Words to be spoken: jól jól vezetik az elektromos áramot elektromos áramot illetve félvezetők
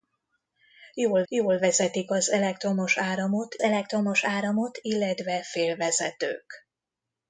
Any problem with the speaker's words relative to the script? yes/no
no